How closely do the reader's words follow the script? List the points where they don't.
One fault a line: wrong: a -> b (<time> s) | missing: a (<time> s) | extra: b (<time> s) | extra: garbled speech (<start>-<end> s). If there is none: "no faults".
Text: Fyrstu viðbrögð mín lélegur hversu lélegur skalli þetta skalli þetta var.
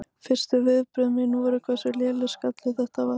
wrong: lélegur -> voru (1.4 s)
missing: skalli þetta (3.1 s)